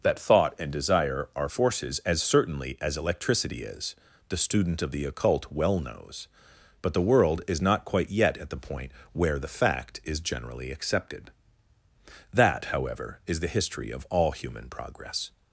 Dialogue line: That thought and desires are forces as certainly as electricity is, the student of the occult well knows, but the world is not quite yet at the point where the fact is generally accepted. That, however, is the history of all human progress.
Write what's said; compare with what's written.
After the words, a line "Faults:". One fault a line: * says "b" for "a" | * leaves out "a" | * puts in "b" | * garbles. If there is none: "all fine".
That thought and desire are forces as certainly as electricity is, the student of the occult well knows, but the world is not quite yet at the point where the fact is generally accepted. That, however, is the history of all human progress.
Faults:
* says "desire" for "desires"